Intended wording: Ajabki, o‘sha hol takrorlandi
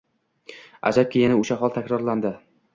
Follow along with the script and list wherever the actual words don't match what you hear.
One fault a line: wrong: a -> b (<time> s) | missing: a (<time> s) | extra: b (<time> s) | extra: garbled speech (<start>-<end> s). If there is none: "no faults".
extra: yana (1.2 s)